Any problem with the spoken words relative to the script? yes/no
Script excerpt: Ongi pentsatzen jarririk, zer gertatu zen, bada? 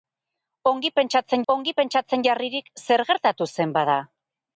yes